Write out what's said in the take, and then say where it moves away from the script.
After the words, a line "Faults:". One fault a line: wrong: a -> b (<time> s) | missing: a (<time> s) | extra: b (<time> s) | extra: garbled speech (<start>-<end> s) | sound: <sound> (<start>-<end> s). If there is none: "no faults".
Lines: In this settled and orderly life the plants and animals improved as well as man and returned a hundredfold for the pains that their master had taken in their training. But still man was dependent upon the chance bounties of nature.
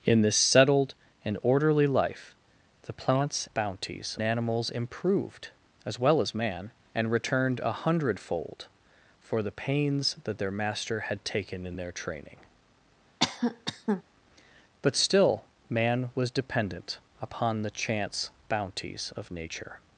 In this settled and orderly life the plants bounties animals improved as well as man and returned a hundredfold for the pains that their master had taken in their training. But still man was dependent upon the chance bounties of nature.
Faults:
wrong: and -> bounties (3.5 s)
sound: cough (13.2-14.0 s)